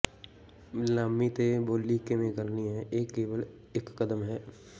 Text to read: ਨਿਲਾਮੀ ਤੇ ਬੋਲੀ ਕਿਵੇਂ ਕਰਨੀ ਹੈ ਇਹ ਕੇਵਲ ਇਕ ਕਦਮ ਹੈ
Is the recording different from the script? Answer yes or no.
no